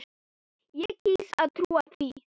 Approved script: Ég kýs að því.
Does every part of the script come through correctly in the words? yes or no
no